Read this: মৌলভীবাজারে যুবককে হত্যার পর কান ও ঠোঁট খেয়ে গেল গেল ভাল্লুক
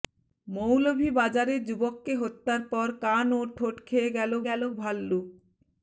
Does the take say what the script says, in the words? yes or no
yes